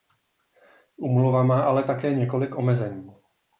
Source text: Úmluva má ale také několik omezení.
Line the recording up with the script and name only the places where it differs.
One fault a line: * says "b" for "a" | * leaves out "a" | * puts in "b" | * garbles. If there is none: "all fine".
all fine